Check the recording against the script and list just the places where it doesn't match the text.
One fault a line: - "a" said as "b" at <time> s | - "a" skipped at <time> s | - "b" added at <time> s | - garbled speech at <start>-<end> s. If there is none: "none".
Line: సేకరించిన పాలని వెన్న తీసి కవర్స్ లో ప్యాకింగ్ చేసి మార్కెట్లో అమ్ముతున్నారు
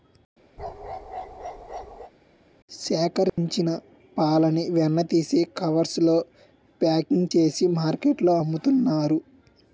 none